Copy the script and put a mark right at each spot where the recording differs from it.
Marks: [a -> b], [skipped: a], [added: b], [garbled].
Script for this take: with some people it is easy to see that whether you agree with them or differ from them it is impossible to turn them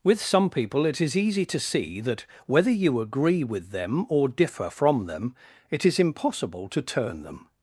with some people it is easy to see that whether you agree with them or differ from them it is impossible to turn them